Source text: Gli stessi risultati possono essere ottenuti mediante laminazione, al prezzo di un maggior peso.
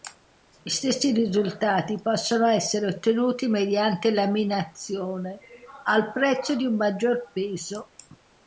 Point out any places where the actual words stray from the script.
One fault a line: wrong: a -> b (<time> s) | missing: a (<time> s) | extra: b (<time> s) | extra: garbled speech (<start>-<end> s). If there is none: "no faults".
no faults